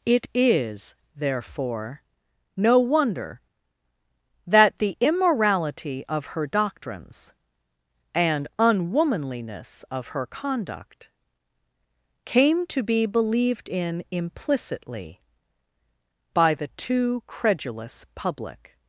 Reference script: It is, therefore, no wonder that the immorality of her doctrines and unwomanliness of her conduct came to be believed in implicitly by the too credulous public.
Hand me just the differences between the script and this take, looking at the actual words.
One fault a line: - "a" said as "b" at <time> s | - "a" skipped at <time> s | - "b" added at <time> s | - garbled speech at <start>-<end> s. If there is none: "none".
none